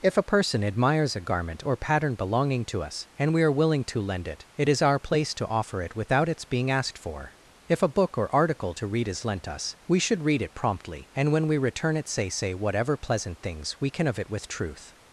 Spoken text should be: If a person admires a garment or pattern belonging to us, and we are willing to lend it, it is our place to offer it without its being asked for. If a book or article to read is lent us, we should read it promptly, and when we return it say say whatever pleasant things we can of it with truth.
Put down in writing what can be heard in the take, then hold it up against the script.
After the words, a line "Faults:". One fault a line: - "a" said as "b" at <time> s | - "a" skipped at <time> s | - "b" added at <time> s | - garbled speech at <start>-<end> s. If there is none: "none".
If a person admires a garment or pattern belonging to us, and we are willing to lend it, it is our place to offer it without its being asked for. If a book or article to read is lent us, we should read it promptly, and when we return it say say whatever pleasant things we can of it with truth.
Faults:
none